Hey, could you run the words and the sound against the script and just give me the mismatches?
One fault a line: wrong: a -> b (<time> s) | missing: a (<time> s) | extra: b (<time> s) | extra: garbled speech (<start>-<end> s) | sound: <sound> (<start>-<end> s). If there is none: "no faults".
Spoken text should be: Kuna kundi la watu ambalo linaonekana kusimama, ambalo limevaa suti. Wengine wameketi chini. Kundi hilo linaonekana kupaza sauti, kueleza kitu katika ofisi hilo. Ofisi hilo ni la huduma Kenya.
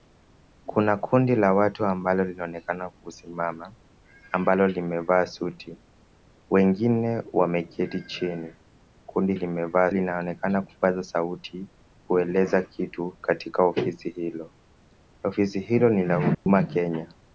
wrong: hilo -> limevaa (9.3 s)
sound: dropout (16.3-16.5 s)